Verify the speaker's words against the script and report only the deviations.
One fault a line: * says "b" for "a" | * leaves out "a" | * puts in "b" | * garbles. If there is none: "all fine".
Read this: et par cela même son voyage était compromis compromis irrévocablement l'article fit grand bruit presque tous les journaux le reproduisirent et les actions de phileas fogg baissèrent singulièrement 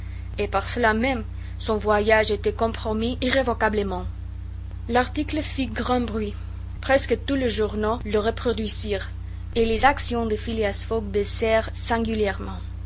* leaves out "compromis"